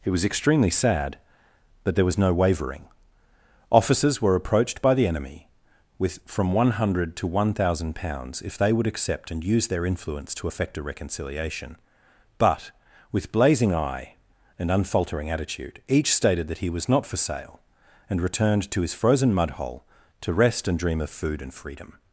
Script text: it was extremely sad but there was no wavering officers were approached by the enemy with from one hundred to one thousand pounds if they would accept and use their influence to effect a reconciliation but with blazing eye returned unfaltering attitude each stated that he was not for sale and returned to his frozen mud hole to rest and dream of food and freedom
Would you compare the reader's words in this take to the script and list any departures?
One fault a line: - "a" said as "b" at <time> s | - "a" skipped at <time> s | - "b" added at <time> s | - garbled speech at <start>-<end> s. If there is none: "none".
- "returned" said as "and" at 14.6 s